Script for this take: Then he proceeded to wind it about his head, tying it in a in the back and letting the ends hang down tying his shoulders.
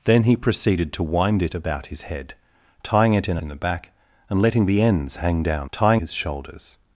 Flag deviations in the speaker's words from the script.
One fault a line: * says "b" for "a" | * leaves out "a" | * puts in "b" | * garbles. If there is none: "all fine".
all fine